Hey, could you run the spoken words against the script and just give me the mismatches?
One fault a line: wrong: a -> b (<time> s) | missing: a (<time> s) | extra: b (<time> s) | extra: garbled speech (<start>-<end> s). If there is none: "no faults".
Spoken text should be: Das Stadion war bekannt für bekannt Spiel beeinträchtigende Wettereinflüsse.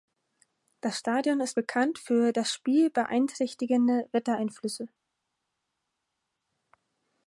wrong: war -> ist (1.4 s)
wrong: bekannt -> das (2.3 s)